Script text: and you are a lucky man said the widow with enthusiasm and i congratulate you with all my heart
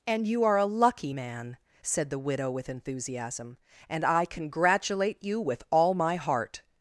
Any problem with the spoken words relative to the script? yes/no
no